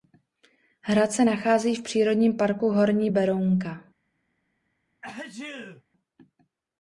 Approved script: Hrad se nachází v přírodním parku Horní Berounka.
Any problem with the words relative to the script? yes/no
no